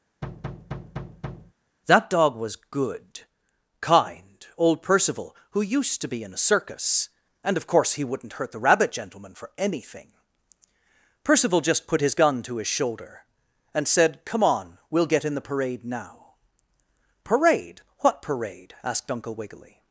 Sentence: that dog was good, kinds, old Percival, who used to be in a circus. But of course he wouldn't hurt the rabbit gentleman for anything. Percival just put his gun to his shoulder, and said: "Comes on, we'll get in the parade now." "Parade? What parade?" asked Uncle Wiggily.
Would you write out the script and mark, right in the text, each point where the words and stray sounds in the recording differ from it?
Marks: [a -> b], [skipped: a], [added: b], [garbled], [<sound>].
[thud] that dog was good, [kinds, -> kind] old Percival, who used to be in a circus. [But -> And] of course he wouldn't hurt the rabbit gentleman for anything. Percival just put his gun to his shoulder, and said: ["Comes -> Come] on, we'll get in the parade now." "Parade? What parade?" asked Uncle Wiggily.